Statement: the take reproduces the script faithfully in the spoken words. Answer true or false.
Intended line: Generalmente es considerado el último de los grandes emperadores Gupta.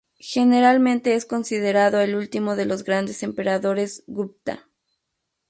true